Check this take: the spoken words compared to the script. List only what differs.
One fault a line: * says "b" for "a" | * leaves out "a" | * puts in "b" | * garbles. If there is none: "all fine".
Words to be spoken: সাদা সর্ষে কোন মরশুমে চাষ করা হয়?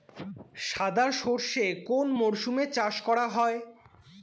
all fine